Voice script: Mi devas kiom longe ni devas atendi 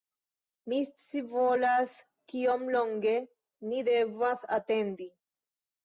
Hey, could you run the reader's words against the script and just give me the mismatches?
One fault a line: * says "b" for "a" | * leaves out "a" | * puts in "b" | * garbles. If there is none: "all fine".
* says "scivolas" for "devas"